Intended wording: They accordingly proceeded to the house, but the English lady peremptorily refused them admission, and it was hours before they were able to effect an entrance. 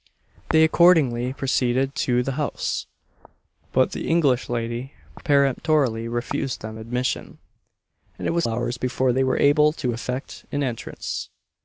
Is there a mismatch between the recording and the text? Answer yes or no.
no